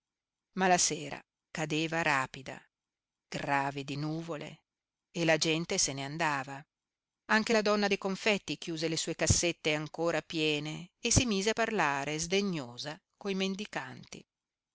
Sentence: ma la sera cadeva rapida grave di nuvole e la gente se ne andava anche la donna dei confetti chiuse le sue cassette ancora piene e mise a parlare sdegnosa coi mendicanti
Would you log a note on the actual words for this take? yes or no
yes